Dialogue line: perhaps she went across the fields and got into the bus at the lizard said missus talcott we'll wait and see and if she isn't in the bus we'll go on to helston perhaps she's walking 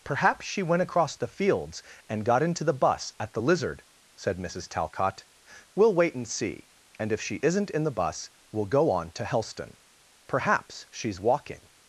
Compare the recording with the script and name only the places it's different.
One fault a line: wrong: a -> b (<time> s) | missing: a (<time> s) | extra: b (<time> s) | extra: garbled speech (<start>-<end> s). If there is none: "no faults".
no faults